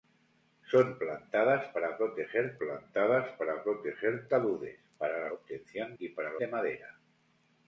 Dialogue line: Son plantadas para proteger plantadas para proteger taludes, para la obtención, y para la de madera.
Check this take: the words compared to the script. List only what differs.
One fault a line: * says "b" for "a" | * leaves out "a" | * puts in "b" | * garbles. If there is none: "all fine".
all fine